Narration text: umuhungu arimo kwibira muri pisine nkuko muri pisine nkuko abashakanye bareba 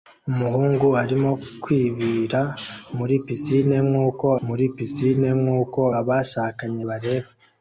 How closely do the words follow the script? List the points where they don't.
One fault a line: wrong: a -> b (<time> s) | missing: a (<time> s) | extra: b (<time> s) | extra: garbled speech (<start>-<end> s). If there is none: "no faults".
no faults